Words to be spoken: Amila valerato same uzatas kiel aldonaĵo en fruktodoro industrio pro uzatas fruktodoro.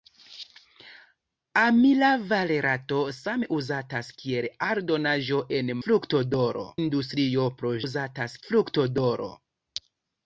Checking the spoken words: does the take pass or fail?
pass